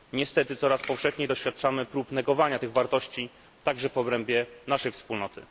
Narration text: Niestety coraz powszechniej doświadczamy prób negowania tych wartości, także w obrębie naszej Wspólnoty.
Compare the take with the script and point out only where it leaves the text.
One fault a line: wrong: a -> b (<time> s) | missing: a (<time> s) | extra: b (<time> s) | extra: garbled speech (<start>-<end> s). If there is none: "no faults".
no faults